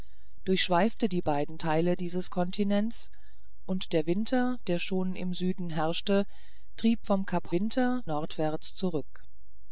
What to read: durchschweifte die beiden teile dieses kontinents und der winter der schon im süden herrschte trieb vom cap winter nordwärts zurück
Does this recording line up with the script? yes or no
yes